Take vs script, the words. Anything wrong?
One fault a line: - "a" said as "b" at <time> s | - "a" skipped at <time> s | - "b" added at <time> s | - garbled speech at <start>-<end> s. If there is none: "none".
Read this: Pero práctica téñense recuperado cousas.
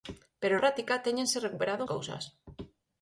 none